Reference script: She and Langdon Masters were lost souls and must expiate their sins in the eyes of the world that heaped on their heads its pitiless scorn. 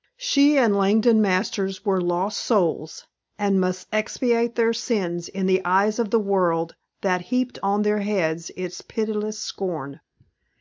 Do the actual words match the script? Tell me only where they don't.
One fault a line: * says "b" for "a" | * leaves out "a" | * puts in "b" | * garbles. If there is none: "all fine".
all fine